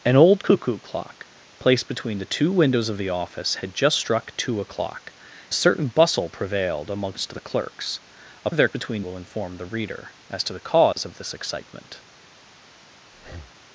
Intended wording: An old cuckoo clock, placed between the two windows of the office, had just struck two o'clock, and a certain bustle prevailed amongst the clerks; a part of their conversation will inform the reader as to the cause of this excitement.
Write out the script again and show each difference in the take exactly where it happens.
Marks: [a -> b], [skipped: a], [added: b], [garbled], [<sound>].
An old cuckoo clock, placed between the two windows of the office, had just struck two o'clock, [skipped: and] a certain bustle prevailed amongst the clerks; a [skipped: part] of their [conversation -> between] will inform the reader as to the cause [dropout] of this excitement. [breath]